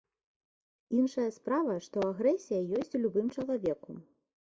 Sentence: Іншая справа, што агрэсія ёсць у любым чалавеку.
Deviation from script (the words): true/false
false